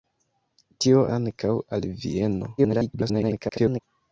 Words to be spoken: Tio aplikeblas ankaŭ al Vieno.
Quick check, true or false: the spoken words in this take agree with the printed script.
false